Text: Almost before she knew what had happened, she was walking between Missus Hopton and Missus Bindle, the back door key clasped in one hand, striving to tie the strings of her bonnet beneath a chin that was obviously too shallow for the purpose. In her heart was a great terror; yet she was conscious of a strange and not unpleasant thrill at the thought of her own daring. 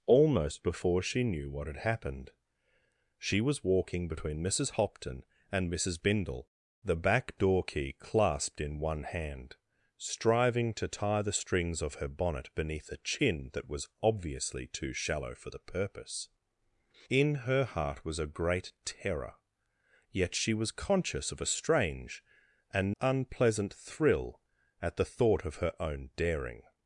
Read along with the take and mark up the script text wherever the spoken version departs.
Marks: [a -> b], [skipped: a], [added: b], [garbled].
Almost before she knew what had happened, she was walking between Missus Hopton and Missus Bindle, the back door key clasped in one hand, striving to tie the strings of her bonnet beneath a chin that was obviously too shallow for the purpose. In her heart was a great terror; yet she was conscious of a strange and [skipped: not] unpleasant thrill at the thought of her own daring.